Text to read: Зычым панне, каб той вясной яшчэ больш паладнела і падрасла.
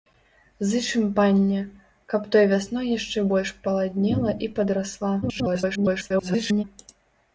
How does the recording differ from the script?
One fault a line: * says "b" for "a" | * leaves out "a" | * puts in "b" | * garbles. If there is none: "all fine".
* garbles